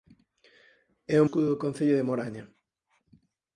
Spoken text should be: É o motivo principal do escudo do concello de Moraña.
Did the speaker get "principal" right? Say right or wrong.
wrong